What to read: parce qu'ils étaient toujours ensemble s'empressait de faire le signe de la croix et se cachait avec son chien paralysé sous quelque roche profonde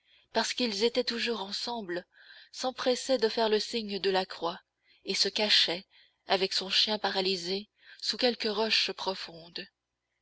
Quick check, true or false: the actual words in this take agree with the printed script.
true